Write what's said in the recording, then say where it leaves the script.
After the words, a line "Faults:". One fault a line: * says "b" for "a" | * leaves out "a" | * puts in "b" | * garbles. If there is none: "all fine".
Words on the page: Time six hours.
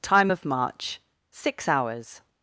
Time of march, six hours.
Faults:
* puts in "of march"